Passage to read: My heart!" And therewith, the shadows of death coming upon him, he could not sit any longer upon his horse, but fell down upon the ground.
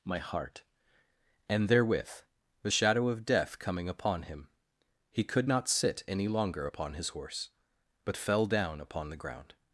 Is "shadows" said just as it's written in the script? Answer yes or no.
no